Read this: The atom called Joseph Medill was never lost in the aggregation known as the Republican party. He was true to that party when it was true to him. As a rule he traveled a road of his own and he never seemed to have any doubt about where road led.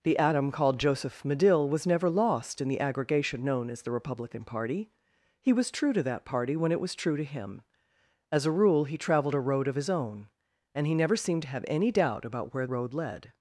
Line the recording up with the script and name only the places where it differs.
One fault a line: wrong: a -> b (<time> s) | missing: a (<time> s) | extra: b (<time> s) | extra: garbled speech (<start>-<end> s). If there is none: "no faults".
no faults